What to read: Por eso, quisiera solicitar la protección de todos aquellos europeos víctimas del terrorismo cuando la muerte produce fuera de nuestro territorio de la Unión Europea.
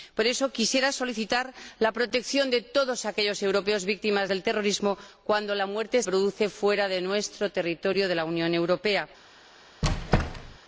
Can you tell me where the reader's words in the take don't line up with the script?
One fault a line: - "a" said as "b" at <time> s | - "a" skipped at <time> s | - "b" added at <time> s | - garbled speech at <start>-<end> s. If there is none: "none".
none